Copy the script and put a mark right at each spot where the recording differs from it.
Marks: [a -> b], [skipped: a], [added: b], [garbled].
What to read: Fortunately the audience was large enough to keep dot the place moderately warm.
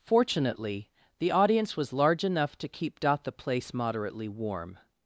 Fortunately the audience was large enough to keep dot the place moderately warm.